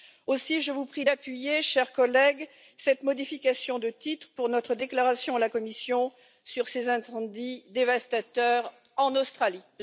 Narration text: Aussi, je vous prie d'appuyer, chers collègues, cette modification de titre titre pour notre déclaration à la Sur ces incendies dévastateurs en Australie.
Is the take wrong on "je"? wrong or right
right